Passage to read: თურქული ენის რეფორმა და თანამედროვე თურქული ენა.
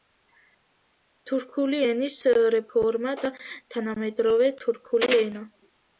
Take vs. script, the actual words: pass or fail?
pass